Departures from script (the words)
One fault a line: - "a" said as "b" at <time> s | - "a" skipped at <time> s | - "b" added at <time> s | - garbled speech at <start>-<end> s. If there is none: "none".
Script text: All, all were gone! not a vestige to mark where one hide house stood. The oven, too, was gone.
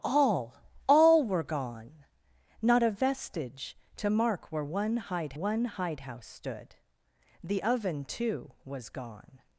- "one hide" added at 5.3 s